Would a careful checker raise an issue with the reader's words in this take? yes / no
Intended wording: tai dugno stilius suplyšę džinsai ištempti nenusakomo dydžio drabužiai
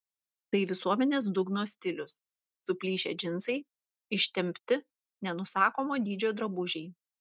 yes